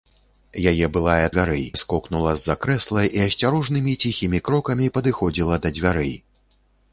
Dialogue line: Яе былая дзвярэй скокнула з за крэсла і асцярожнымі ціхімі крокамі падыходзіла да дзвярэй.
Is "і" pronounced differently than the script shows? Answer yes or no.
no